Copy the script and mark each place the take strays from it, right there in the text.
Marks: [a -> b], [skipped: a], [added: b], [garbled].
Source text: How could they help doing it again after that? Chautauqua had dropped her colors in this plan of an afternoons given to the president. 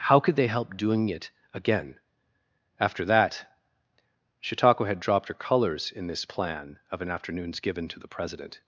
How could they help doing it again after that? Chautauqua had dropped her colors in this plan of an afternoons given to the president.